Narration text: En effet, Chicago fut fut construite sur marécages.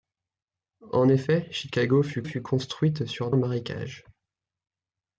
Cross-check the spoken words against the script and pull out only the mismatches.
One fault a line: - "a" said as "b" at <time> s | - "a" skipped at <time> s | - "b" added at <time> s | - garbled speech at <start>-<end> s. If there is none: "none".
none